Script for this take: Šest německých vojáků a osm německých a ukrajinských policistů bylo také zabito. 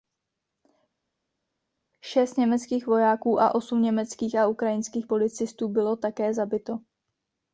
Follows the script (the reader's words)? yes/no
yes